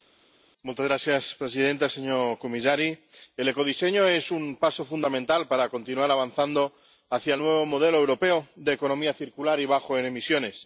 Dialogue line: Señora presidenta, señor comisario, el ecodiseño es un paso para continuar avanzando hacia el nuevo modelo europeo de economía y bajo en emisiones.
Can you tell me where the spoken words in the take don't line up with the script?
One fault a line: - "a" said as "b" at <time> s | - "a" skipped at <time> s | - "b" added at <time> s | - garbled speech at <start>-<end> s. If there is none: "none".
- "fundamental" added at 4.9 s
- "circular" added at 9.1 s